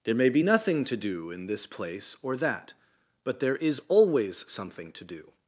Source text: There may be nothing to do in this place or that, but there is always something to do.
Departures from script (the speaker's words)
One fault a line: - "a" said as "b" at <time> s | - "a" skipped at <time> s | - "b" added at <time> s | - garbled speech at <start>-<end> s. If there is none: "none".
none